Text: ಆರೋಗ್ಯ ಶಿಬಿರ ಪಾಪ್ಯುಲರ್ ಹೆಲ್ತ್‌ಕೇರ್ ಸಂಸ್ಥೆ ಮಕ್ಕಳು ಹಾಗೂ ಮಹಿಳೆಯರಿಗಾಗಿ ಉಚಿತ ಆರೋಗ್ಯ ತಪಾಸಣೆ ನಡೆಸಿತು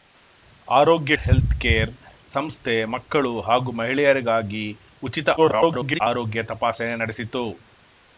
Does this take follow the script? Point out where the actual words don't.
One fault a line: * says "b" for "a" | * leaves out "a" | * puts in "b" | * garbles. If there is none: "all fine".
* leaves out "ಶಿಬಿರ ಪಾಪ್ಯುಲರ್"
* garbles